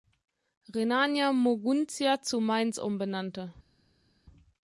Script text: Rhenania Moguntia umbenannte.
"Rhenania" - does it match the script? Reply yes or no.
yes